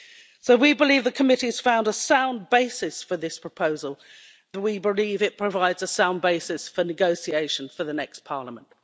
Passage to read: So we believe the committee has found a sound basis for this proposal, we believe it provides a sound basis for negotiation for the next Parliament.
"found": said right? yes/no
yes